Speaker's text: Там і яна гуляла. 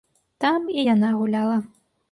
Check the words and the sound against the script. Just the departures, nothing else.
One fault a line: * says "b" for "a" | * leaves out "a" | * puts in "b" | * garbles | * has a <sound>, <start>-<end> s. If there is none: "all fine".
all fine